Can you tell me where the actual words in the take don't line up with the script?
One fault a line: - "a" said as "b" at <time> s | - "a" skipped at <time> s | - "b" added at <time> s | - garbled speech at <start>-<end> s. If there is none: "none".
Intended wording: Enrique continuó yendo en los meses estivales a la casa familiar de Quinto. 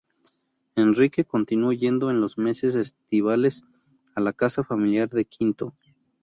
none